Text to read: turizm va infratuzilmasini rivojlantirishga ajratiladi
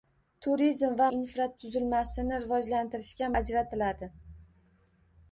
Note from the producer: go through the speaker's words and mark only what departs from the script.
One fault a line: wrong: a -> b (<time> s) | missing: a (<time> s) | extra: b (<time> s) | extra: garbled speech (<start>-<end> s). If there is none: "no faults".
no faults